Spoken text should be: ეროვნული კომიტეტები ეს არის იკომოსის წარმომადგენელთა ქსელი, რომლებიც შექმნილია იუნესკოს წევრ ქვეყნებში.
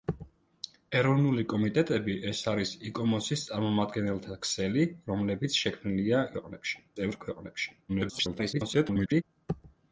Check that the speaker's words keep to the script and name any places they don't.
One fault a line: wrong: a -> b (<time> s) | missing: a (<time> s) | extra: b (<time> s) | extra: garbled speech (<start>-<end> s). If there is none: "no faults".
wrong: იუნესკოს -> ქვეყნებში (6.3 s)
extra: garbled speech (7.9-9.2 s)